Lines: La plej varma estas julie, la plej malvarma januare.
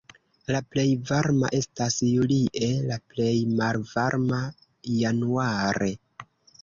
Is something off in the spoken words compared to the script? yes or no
no